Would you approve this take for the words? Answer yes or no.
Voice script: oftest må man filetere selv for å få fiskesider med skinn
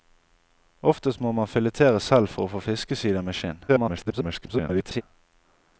no